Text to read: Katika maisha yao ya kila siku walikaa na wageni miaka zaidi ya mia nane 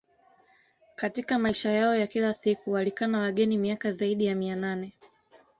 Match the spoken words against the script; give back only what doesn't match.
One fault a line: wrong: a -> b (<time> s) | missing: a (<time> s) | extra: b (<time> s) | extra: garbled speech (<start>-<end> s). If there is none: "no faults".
no faults